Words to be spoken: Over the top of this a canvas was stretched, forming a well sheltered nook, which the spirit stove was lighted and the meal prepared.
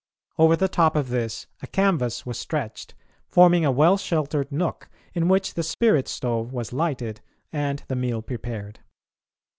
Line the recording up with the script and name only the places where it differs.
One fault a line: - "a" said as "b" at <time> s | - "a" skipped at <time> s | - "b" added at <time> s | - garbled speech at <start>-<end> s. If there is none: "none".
- "in" added at 5.1 s